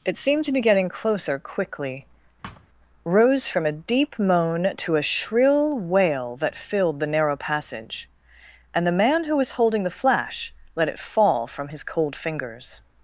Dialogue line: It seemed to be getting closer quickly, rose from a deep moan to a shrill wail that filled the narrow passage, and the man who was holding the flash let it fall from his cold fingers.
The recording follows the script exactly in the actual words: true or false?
true